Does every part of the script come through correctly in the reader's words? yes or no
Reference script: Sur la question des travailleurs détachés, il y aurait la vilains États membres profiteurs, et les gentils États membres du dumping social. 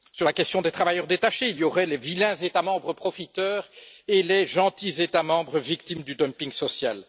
no